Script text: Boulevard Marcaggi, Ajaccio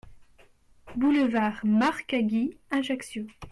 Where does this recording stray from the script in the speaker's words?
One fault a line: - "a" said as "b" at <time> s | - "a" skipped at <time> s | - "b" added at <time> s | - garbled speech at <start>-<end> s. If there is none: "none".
none